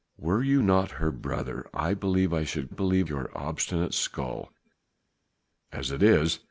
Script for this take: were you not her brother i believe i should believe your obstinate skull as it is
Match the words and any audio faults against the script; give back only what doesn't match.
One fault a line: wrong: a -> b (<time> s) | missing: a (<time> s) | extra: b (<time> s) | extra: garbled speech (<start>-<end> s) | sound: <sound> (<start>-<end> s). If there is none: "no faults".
no faults